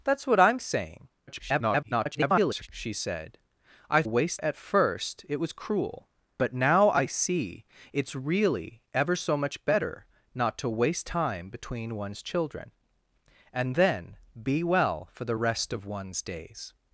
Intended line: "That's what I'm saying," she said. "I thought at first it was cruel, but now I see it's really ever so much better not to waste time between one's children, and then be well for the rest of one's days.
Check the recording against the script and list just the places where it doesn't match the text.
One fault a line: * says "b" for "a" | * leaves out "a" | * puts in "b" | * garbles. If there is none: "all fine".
* garbles
* says "waste" for "thought"